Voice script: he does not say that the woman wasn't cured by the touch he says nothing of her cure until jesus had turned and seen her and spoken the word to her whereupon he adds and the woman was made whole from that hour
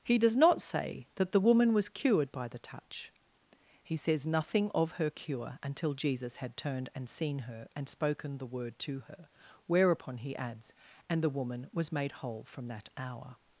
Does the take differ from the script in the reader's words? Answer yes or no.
yes